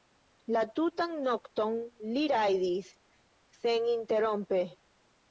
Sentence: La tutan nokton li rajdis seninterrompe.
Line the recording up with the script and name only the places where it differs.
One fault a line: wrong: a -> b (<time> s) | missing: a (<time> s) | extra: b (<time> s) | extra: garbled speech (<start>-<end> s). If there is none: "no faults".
no faults